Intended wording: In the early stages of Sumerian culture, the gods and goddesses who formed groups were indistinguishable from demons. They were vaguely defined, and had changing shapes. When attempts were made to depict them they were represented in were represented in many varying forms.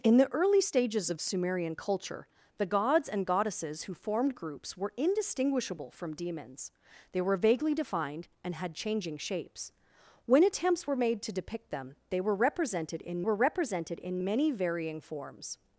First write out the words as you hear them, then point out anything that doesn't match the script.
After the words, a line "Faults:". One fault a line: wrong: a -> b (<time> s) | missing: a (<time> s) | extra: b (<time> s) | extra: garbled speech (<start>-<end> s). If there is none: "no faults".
In the early stages of Sumerian culture, the gods and goddesses who formed groups were indistinguishable from demons. They were vaguely defined, and had changing shapes. When attempts were made to depict them they were represented in were represented in many varying forms.
Faults:
no faults